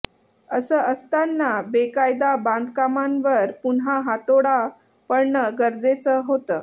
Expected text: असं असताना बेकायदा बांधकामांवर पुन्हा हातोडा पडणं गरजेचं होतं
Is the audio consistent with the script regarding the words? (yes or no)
yes